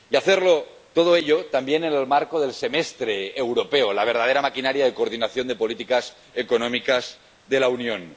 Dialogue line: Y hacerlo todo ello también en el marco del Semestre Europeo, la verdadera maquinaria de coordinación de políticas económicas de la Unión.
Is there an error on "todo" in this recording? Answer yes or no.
no